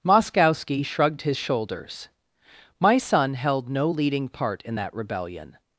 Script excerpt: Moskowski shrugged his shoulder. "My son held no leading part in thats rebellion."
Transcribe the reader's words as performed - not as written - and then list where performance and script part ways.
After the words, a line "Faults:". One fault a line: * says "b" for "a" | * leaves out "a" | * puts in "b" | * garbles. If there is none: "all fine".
Moskowski shrugged his shoulders. "My son held no leading part in that rebellion."
Faults:
* says "shoulders" for "shoulder"
* says "that" for "thats"